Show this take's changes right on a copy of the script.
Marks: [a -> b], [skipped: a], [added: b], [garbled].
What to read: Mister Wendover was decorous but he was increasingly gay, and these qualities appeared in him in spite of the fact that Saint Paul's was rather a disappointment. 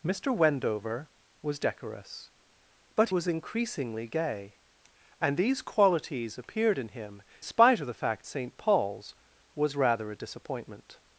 Mister Wendover was decorous but [skipped: he] was increasingly gay, and these qualities appeared in him [skipped: in] spite of the fact [skipped: that] Saint Paul's was rather a disappointment.